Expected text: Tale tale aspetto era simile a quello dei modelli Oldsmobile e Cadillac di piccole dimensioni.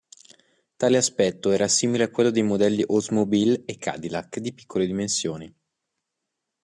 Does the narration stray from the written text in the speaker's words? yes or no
yes